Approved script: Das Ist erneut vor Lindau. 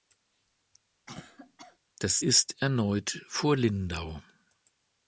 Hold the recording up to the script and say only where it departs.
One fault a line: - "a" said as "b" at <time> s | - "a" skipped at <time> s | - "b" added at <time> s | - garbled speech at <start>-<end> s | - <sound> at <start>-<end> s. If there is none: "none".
- cough at 1.1-1.8 s